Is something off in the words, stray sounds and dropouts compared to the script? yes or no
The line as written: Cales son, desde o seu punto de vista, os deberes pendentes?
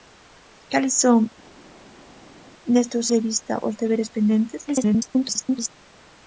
yes